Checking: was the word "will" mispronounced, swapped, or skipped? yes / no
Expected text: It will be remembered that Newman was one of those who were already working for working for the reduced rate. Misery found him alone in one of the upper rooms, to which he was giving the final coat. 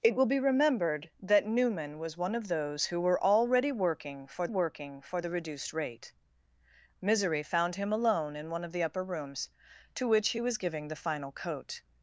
no